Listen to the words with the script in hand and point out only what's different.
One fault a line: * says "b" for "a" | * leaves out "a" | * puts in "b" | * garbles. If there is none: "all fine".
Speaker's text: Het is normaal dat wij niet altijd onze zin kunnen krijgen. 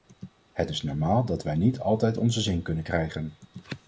all fine